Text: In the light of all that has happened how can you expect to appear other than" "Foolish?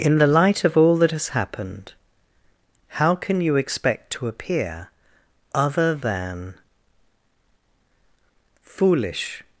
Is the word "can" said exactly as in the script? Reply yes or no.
yes